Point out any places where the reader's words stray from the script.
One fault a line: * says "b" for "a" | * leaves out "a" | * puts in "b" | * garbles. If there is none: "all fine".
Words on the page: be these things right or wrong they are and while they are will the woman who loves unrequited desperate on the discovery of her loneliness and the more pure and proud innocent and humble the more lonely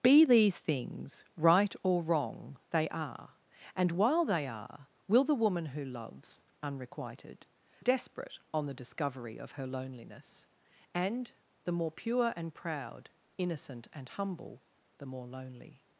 all fine